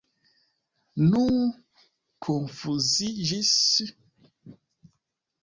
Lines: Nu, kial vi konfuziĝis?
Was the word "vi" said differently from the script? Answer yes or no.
yes